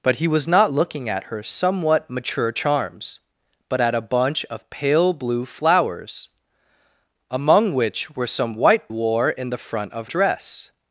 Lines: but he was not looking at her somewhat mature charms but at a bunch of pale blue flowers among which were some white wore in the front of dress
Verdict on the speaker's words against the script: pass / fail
pass